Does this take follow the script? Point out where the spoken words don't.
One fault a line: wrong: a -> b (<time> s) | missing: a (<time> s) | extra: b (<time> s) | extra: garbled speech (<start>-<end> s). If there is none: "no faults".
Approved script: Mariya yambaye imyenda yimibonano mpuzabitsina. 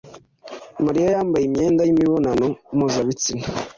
no faults